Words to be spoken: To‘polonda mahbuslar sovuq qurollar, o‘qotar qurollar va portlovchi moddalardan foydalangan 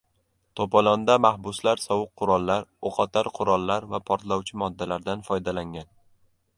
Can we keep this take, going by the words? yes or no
yes